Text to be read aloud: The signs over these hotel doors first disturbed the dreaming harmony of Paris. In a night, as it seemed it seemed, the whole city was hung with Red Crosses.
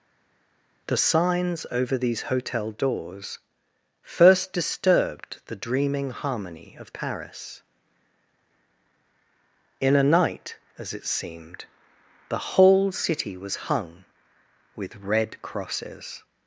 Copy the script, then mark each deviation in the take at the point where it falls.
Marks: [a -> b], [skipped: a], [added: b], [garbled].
The signs over these hotel doors first disturbed the dreaming harmony of Paris. In a night, as it seemed [skipped: it seemed,] the whole city was hung with Red Crosses.